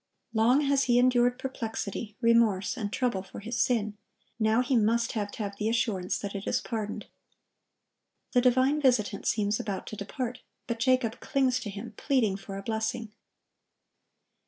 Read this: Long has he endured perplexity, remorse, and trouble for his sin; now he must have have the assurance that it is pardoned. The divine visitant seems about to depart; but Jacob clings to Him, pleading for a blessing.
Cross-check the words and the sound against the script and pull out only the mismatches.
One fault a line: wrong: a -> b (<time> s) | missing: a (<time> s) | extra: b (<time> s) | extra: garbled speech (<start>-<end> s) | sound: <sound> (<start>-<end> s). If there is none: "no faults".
no faults